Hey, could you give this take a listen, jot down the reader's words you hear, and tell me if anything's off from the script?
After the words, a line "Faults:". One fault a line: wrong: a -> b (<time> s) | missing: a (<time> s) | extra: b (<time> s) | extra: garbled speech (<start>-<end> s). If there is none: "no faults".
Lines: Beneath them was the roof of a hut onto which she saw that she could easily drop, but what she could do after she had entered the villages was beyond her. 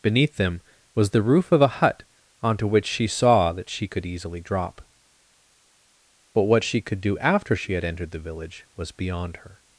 Beneath them was the roof of a hut onto which she saw that she could easily drop, but what she could do after she had entered the village was beyond her.
Faults:
wrong: villages -> village (8.2 s)